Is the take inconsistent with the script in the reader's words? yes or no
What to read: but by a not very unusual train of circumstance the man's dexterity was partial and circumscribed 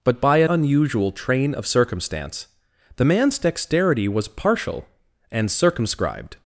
yes